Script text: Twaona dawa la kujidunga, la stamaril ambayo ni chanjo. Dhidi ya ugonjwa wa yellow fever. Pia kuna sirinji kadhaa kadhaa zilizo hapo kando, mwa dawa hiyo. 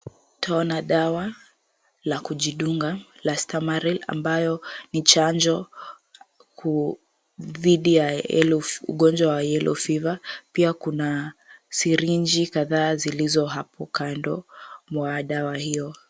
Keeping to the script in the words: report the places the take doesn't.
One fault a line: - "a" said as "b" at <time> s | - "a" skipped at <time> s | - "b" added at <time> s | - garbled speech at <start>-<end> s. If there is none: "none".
- "kadhaa" skipped at 12.9 s